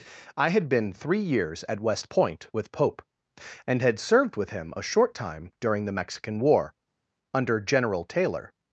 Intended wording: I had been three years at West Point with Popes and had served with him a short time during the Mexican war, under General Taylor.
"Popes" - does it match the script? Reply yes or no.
no